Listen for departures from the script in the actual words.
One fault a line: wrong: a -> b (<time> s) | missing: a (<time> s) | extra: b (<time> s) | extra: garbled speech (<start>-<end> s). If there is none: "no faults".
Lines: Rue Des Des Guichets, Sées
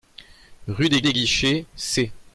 no faults